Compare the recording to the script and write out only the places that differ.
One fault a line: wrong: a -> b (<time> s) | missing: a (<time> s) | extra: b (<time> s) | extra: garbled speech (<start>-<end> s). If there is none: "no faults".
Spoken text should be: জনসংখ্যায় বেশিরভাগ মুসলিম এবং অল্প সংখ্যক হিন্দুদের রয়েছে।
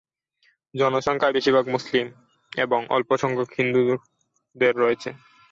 no faults